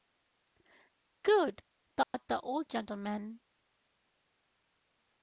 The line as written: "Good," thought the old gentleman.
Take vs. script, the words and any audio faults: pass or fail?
fail